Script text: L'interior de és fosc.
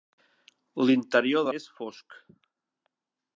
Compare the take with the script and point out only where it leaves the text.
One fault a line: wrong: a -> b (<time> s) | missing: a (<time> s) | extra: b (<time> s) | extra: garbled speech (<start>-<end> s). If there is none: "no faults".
no faults